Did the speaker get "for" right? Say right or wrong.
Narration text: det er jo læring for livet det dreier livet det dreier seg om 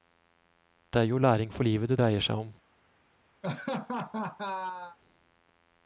right